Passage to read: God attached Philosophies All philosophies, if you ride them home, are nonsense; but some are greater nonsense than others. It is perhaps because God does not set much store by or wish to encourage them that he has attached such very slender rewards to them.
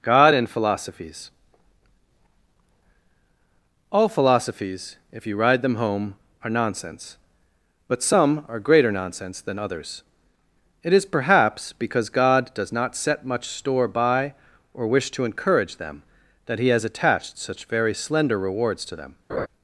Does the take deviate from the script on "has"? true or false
false